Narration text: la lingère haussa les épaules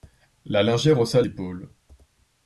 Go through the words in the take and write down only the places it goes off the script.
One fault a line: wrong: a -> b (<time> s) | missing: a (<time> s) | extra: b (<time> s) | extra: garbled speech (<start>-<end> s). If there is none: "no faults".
missing: les (1.2 s)